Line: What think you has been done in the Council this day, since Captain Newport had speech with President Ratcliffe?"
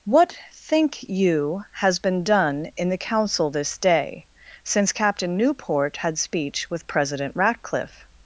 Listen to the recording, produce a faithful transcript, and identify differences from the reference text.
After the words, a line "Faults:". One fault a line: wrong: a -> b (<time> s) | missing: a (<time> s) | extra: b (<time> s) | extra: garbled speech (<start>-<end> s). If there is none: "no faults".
What think you has been done in the Council this day, since Captain Newport had speech with President Ratcliffe?"
Faults:
no faults